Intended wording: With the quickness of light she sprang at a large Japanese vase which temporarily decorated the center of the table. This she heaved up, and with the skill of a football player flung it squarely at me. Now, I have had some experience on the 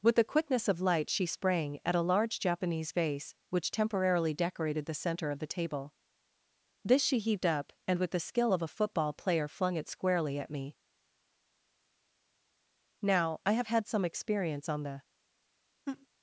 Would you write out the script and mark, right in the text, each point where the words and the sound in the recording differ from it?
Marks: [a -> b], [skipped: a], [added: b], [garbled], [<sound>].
With the quickness of light she sprang at a large Japanese vase which temporarily decorated the center of the table. This she heaved up, and with the skill of a football player flung it squarely at me. Now, I have had some experience on the [laugh]